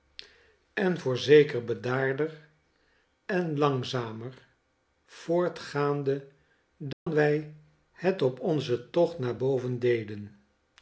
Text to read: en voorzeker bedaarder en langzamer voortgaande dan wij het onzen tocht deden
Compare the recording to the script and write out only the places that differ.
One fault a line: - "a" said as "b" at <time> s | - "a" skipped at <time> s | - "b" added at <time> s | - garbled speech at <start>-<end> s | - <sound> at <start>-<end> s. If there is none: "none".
- dropout at 6.9-7.1 s
- "op" added at 8.2 s
- "naar boven" added at 9.2 s